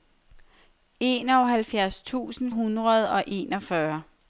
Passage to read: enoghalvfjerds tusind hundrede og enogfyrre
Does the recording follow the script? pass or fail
pass